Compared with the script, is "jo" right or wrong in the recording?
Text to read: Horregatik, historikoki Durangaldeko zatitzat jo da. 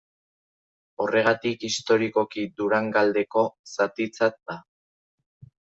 wrong